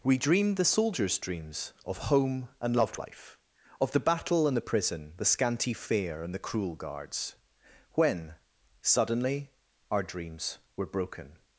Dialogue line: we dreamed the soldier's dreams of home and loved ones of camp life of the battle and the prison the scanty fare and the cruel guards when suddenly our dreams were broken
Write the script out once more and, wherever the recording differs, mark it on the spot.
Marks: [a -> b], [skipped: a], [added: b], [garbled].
we dreamed the soldier's dreams of home and loved [skipped: ones of camp] life of the battle and the prison the scanty fare and the cruel guards when suddenly our dreams were broken